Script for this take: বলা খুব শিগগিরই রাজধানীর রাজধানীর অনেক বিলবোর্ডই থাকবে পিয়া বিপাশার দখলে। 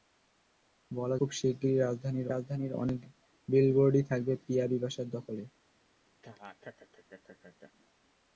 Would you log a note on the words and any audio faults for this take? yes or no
yes